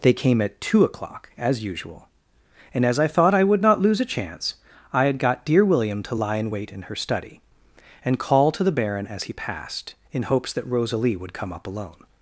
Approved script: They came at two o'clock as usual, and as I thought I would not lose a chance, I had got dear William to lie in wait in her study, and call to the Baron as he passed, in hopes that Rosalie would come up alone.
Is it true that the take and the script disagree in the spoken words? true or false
false